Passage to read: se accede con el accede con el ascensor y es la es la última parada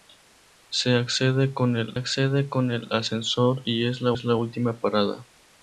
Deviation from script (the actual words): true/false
false